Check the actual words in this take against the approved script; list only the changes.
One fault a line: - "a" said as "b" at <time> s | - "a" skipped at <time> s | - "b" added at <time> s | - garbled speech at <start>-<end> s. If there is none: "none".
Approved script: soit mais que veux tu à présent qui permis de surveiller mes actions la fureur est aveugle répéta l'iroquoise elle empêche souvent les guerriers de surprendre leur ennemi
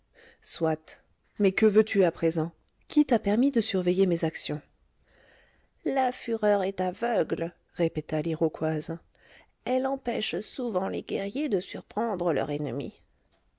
- "t'a" added at 3.0 s